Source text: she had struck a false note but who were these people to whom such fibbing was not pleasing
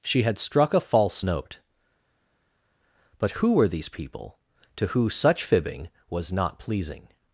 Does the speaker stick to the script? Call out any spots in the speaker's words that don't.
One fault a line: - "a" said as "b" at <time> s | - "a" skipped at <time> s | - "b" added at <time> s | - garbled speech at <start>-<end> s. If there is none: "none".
- "whom" said as "who" at 4.9 s